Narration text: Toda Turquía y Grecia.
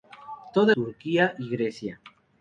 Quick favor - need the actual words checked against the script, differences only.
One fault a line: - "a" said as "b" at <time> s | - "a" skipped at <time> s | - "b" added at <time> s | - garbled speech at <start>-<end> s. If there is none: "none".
none